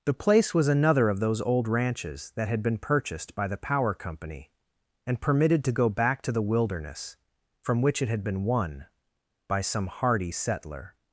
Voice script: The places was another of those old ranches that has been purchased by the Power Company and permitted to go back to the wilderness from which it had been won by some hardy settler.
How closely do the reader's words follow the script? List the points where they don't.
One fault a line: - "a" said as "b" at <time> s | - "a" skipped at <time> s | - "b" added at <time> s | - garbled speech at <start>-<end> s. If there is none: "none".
- "places" said as "place" at 0.1 s
- "has" said as "had" at 2.5 s